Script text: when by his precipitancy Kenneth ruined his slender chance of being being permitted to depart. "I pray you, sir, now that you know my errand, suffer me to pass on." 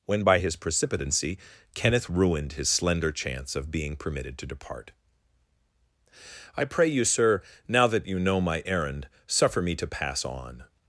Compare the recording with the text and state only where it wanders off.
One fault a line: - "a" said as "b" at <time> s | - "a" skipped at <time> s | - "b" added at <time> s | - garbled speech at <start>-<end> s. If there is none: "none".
- "being" skipped at 4.0 s